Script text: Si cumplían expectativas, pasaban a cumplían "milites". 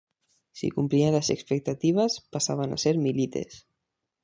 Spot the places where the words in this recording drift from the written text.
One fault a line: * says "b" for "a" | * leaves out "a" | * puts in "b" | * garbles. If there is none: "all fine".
* puts in "las"
* says "ser" for "cumplían"